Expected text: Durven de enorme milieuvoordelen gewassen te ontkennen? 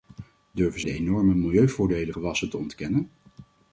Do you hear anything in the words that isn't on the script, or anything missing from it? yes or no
no